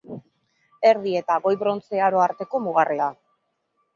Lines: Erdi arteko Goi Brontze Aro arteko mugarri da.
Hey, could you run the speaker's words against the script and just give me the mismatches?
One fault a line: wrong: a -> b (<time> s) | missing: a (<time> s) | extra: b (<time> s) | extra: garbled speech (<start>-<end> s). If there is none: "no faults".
wrong: arteko -> eta (1.2 s)